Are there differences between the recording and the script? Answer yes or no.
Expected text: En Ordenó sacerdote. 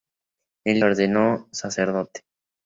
no